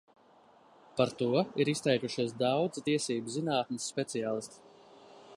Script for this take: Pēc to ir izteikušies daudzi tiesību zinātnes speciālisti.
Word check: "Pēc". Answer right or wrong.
wrong